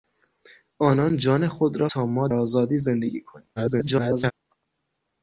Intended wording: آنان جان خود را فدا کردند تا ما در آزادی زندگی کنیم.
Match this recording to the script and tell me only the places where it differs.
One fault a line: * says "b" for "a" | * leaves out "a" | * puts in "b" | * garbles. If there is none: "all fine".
* leaves out "فدا کردند"
* leaves out "در"
* garbles